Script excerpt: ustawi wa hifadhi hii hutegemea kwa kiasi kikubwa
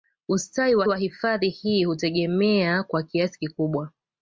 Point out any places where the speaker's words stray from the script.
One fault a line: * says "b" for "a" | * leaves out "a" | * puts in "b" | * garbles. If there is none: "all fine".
* puts in "wa"